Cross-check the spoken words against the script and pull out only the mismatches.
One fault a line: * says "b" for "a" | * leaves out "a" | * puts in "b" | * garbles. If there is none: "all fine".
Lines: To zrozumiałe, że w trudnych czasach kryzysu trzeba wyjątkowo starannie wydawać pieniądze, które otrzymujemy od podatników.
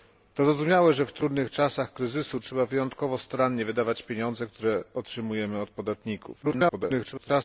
* garbles